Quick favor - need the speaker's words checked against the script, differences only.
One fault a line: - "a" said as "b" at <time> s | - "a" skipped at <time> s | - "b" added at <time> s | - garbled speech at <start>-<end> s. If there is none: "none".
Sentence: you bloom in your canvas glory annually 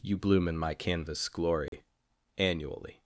- "your" said as "my" at 0.6 s